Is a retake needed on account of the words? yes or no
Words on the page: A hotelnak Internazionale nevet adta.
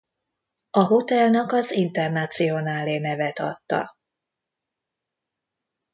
yes